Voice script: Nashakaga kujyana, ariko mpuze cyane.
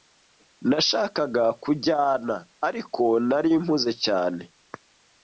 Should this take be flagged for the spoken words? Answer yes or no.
yes